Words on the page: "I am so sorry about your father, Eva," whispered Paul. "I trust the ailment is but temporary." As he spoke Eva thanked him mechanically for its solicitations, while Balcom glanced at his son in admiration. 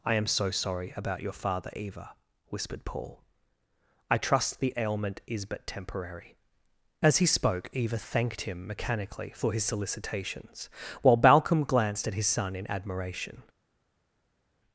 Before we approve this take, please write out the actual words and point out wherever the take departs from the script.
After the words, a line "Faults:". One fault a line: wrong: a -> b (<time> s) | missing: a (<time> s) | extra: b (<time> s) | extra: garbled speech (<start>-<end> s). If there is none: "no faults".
"I am so sorry about your father, Eva," whispered Paul. "I trust the ailment is but temporary." As he spoke Eva thanked him mechanically for his solicitations, while Balcom glanced at his son in admiration.
Faults:
wrong: its -> his (9.5 s)